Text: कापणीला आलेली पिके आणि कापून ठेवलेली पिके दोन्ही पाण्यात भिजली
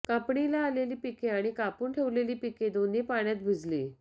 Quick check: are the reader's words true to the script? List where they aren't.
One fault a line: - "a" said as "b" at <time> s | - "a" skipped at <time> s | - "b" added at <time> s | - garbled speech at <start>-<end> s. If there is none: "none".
none